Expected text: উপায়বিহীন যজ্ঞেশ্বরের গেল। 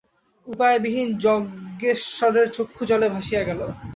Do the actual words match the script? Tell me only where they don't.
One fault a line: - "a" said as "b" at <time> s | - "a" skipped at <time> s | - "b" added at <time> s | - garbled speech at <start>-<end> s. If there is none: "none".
- "চক্ষু জলে ভাসিয়া" added at 2.5 s